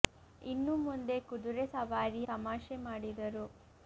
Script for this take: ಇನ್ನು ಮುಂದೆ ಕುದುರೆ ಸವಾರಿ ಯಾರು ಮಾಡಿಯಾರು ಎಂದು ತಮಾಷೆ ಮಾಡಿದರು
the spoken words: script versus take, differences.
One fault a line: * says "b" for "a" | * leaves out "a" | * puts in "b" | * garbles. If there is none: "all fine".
* leaves out "ಯಾರು ಮಾಡಿಯಾರು ಎಂದು"